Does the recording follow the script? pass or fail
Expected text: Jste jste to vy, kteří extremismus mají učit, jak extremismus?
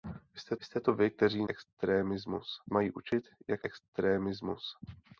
pass